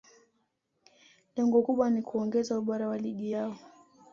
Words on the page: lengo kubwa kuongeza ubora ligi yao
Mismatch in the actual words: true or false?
true